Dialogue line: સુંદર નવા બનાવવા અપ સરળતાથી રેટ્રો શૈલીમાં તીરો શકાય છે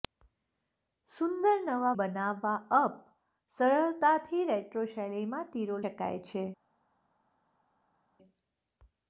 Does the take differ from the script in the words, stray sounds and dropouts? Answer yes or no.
no